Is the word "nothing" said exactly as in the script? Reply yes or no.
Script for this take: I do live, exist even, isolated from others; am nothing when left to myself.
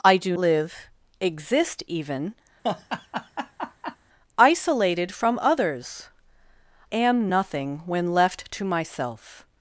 yes